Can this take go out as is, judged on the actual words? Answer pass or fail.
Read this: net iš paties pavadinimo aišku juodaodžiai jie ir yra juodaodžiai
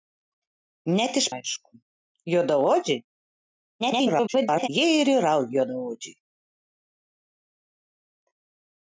fail